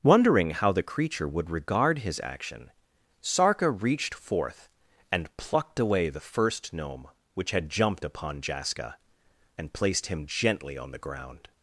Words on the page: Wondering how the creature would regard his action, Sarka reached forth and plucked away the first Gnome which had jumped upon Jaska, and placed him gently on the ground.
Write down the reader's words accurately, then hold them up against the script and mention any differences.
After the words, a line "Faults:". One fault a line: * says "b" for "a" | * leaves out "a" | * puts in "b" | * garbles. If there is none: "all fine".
Wondering how the creature would regard his action, Sarka reached forth and plucked away the first Gnome which had jumped upon Jaska, and placed him gently on the ground.
Faults:
all fine